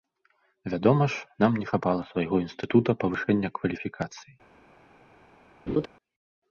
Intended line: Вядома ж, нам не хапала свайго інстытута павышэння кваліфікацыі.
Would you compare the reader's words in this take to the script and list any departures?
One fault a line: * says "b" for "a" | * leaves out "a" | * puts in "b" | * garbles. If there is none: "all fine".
all fine